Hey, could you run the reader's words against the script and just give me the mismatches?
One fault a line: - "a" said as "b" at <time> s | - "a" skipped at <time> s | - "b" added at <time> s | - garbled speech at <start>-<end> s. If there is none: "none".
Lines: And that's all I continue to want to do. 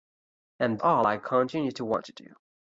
- "that's" skipped at 0.8 s